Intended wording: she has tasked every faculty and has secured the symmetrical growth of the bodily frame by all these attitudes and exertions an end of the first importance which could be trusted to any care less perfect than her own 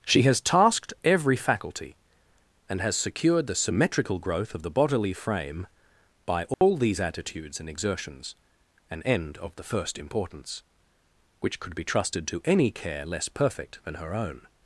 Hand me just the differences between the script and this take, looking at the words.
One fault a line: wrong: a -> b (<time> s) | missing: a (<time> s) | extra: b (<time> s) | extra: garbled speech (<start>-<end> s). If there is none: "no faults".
no faults